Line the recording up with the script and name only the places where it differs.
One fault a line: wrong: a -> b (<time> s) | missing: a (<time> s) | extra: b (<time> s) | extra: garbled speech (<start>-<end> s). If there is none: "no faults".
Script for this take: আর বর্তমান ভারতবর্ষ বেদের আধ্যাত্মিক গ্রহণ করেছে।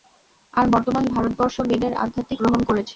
no faults